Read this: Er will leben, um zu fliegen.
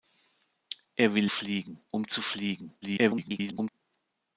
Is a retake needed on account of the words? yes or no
yes